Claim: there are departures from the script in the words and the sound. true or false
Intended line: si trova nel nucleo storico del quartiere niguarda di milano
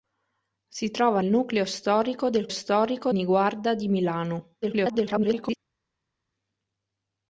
true